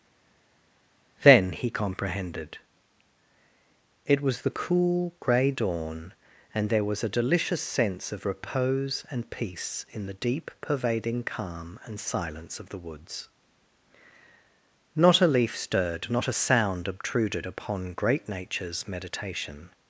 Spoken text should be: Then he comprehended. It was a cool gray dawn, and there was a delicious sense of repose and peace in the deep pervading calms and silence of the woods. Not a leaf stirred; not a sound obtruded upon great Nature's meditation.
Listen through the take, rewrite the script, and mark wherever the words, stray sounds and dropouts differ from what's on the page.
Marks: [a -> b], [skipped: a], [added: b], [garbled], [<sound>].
Then he comprehended. It was [a -> the] cool gray dawn, and there was a delicious sense of repose and peace in the deep pervading [calms -> calm] and silence of the woods. Not a leaf stirred; not a sound obtruded upon great Nature's meditation.